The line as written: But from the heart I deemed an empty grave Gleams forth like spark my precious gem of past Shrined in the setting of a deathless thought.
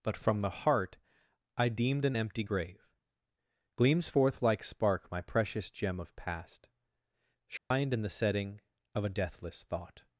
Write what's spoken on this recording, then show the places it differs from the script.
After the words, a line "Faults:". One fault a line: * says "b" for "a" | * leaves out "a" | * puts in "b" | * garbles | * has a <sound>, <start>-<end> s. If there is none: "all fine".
But from the heart I deemed an empty grave Gleams forth like spark my precious gem of past Shrined in the setting of a deathless thought.
Faults:
* has a dropout, 7.6-7.7 s